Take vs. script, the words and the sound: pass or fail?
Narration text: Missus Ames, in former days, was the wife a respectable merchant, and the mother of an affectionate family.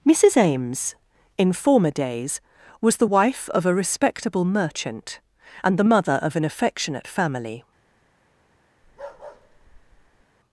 fail